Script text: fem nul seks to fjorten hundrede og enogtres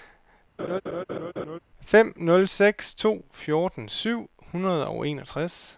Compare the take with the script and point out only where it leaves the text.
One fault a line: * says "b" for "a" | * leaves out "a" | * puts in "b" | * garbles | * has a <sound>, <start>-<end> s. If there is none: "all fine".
* has a laugh, 0.6-1.6 s
* puts in "syv"